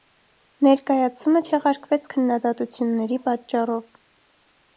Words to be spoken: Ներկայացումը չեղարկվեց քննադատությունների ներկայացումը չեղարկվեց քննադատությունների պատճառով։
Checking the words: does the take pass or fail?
fail